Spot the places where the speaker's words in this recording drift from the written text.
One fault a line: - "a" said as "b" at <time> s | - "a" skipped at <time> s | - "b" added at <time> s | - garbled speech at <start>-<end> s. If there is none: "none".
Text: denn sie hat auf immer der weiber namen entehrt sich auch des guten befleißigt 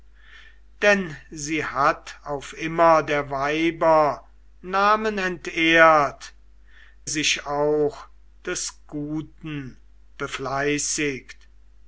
none